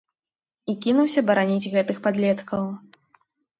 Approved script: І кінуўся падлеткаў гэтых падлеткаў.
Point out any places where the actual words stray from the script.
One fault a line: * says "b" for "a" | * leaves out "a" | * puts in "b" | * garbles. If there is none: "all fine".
* says "бараніць" for "падлеткаў"